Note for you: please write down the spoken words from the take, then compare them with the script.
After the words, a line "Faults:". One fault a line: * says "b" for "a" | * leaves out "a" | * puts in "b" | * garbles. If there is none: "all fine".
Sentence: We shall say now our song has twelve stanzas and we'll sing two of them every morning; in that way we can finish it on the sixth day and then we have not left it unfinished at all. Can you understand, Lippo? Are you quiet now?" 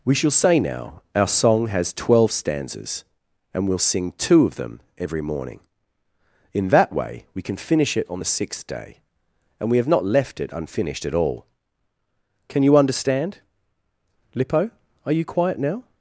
We shall say now our song has twelve stanzas and we'll sing two of them every morning; in that way we can finish it on the sixth day and we have not left it unfinished at all. Can you understand, Lippo? Are you quiet now?"
Faults:
* leaves out "then"